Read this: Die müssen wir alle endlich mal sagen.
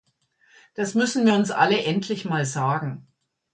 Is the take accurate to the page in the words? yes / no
no